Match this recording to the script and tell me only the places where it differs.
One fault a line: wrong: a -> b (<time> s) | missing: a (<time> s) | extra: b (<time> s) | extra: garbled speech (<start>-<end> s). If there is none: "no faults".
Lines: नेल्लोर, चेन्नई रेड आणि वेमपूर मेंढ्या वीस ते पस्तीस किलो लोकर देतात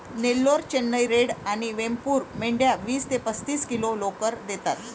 no faults